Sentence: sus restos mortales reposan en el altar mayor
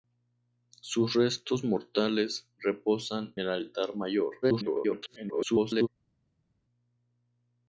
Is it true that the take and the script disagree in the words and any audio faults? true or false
true